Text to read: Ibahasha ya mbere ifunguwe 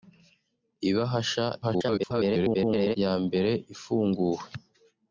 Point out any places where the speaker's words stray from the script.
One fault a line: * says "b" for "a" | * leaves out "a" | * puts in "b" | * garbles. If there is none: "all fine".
* garbles